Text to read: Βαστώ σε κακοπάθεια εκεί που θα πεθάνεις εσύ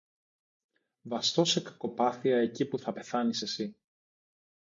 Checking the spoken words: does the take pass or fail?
pass